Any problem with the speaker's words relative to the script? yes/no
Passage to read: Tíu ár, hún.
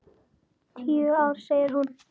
yes